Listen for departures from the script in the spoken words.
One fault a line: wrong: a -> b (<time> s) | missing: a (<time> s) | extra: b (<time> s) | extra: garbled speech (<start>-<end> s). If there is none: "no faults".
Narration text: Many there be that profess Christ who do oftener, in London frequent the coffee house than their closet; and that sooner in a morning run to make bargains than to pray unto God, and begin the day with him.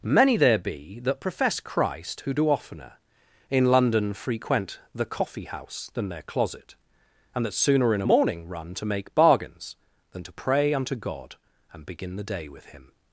no faults